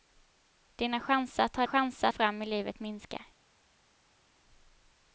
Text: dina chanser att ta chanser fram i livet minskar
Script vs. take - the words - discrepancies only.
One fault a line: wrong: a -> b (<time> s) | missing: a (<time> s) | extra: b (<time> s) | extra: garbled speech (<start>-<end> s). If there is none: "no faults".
no faults